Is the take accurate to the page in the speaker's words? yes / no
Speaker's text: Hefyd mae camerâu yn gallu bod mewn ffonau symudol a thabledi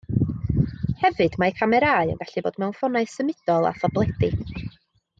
yes